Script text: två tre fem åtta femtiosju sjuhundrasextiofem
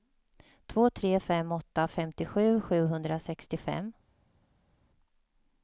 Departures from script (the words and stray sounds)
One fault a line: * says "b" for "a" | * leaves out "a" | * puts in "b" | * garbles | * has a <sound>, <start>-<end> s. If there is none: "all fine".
all fine